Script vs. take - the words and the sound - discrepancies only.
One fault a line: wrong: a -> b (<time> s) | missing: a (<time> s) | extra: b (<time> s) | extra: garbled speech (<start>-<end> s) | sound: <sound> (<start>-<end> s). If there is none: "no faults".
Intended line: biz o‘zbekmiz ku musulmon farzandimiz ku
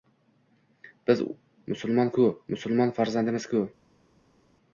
wrong: o‘zbekmiz -> musulmon (1.7 s)